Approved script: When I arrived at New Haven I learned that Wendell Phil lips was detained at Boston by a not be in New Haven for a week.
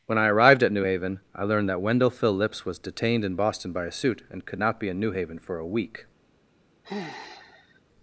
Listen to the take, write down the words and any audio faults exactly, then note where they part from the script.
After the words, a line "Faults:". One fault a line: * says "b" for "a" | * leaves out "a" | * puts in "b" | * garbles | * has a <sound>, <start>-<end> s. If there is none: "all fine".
When I arrived at New Haven I learned that Wendell Phil lips was detained in Boston by a suit and could not be in New Haven for a week.
Faults:
* says "in" for "at"
* puts in "suit and could"
* has a sigh, 6.8-7.8 s